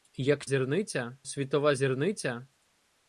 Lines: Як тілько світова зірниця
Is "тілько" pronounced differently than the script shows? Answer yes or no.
yes